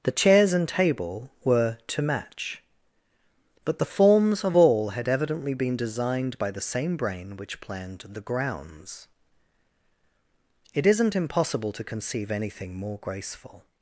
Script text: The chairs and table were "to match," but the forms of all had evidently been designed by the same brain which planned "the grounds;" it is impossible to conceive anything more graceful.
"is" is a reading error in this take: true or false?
true